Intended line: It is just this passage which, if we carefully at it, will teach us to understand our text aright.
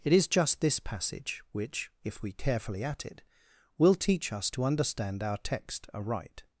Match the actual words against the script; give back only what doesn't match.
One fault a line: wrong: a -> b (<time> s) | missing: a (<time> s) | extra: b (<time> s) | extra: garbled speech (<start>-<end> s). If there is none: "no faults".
no faults